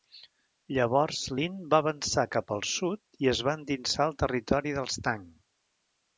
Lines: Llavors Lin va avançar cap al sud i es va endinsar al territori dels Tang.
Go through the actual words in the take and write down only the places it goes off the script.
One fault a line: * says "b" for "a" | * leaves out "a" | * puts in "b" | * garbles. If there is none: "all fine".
all fine